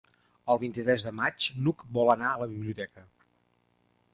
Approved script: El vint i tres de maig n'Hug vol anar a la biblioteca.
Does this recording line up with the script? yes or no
yes